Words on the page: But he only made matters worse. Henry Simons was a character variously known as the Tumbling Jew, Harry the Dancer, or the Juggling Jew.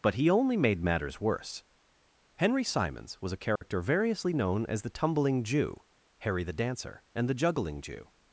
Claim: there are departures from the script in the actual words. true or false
true